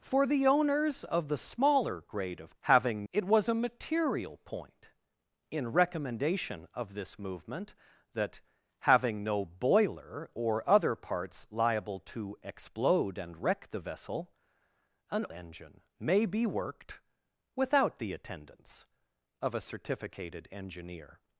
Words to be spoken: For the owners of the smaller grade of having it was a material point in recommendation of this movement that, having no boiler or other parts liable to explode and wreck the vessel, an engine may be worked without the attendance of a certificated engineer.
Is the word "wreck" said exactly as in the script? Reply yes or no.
yes